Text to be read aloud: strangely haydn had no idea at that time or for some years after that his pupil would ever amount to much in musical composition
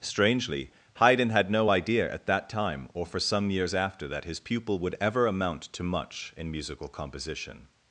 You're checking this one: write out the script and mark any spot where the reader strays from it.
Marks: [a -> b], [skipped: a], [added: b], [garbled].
strangely haydn had no idea at that time or for some years after that his pupil would ever amount to much in musical composition